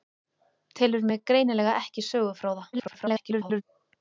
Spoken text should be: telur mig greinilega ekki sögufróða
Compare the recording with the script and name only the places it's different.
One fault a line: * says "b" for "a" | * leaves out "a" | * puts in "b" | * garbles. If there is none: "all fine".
* garbles